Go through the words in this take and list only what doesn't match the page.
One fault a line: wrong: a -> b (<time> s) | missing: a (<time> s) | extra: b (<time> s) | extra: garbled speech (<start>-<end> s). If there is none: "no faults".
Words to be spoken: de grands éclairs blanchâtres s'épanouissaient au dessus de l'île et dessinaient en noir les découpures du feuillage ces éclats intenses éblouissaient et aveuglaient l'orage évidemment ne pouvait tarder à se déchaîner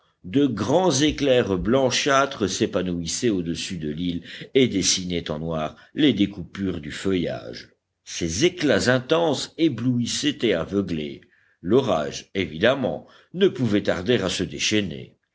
no faults